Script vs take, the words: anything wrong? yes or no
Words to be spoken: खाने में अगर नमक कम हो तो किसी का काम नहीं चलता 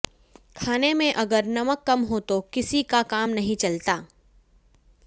no